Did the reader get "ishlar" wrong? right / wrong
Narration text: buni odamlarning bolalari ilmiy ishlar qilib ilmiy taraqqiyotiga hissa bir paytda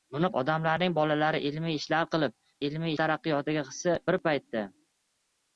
right